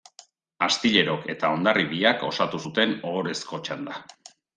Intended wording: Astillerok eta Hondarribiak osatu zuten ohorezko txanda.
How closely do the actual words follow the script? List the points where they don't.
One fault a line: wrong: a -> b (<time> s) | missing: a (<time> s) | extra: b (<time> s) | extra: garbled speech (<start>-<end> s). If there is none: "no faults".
no faults